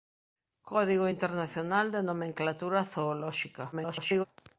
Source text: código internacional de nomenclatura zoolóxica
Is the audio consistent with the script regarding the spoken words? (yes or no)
no